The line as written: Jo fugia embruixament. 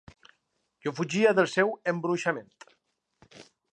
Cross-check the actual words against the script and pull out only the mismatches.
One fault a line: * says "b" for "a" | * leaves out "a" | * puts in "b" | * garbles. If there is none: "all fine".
* puts in "del seu"